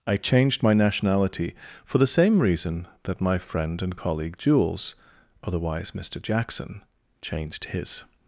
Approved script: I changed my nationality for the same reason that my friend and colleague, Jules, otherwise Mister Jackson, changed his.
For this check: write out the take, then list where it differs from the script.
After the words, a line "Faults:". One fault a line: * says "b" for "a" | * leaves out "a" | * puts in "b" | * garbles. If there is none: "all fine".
I changed my nationality for the same reason that my friend and colleague, Jules, otherwise Mister Jackson, changed his.
Faults:
all fine